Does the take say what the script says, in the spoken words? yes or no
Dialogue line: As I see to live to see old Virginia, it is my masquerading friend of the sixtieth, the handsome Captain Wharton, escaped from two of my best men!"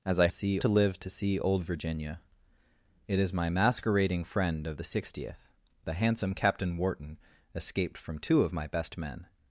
yes